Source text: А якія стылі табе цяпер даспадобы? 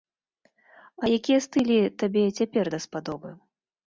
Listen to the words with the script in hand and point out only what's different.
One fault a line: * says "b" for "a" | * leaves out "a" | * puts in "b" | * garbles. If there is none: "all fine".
all fine